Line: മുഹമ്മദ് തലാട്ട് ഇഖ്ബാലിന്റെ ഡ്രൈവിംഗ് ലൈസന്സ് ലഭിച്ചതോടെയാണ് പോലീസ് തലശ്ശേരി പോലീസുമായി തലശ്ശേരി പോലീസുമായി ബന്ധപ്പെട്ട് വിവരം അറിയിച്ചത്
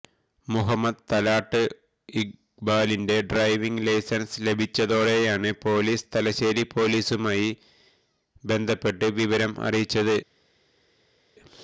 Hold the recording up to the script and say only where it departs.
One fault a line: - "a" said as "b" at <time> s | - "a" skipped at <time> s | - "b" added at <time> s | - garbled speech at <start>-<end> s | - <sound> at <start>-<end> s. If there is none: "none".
- "തലശ്ശേരി പോലീസുമായി" skipped at 7.5 s